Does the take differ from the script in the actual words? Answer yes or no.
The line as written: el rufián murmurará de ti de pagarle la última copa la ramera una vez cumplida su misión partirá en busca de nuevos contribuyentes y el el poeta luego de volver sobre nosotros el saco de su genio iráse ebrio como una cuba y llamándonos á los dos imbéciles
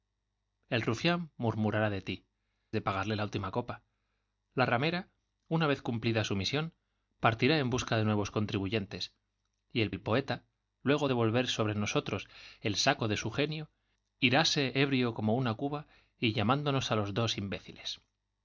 no